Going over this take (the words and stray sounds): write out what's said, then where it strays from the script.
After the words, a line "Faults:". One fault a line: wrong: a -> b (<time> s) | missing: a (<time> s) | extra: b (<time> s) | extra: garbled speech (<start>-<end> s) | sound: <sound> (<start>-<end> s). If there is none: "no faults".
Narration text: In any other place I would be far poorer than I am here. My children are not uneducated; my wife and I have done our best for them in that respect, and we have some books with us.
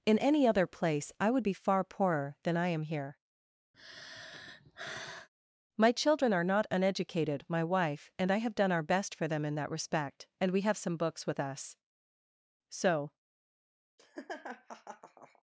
In any other place I would be far poorer than I am here. My children are not uneducated; my wife and I have done our best for them in that respect, and we have some books with us. So
Faults:
sound: sigh (3.7-5.3 s)
extra: So (12.7 s)
sound: laugh (14.0-15.4 s)